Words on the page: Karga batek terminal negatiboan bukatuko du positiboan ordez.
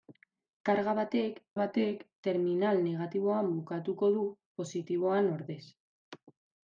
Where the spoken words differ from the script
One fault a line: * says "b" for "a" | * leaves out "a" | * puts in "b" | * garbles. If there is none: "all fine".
* puts in "batek"